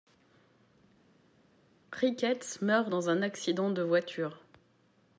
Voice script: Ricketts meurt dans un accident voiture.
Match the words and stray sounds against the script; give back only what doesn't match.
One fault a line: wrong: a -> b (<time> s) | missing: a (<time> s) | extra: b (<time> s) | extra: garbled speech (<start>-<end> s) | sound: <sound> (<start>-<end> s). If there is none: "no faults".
extra: de (3.7 s)